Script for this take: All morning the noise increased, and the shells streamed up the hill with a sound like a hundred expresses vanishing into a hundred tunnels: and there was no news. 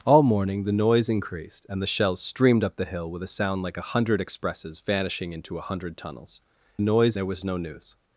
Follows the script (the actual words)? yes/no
no